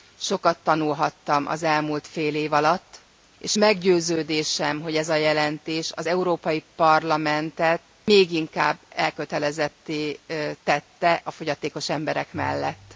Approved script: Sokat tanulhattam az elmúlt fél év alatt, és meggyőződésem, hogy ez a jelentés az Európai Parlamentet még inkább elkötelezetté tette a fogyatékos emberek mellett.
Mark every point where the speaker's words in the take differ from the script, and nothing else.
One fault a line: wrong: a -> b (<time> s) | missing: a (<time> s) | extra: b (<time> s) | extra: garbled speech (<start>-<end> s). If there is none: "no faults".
no faults